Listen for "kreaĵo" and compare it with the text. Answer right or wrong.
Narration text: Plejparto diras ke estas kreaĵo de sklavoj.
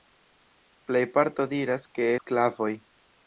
wrong